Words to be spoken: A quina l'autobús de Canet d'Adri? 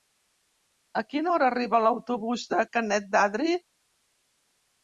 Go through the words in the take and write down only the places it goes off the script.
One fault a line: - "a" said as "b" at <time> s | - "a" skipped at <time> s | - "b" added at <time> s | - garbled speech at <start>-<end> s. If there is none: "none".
- "hora arriba" added at 1.3 s